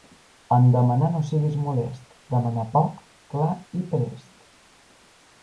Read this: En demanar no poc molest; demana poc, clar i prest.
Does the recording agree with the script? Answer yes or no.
no